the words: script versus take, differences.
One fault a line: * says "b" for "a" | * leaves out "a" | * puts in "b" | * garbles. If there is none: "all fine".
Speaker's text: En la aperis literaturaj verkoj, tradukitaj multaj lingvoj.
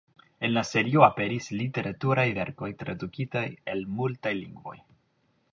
* puts in "serio"
* puts in "el"